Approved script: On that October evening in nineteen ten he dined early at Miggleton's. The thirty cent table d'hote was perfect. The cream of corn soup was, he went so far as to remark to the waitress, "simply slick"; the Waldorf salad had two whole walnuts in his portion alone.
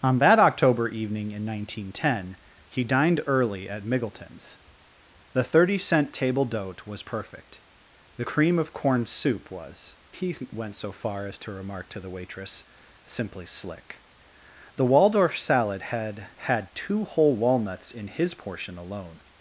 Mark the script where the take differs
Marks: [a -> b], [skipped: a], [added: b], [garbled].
On that October evening in nineteen ten he dined early at Miggleton's. The thirty cent table d'hote was perfect. The cream of corn soup was, he went so far as to remark to the waitress, "simply slick"; the Waldorf salad had [added: had] two whole walnuts in his portion alone.